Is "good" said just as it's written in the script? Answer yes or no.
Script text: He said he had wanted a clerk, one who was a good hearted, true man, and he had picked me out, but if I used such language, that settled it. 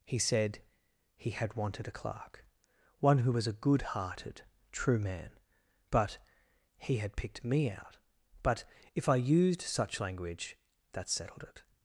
yes